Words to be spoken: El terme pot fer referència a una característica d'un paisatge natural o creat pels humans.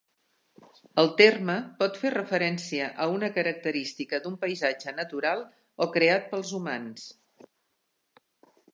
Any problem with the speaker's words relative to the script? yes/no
no